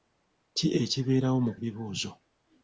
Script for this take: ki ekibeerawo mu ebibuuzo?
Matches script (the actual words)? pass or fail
pass